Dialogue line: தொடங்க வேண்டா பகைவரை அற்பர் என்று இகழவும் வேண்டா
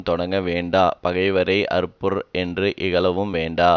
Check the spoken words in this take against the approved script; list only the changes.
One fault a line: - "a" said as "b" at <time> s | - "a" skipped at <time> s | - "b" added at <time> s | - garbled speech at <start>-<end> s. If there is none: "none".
none